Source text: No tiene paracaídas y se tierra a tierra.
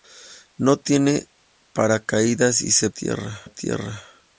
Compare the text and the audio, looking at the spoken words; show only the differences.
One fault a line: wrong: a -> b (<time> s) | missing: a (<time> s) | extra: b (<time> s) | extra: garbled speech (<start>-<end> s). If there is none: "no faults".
no faults